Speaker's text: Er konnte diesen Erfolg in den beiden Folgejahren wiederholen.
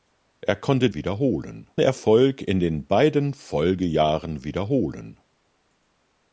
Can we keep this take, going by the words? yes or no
no